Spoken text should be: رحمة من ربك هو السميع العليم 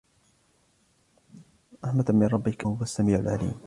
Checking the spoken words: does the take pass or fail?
pass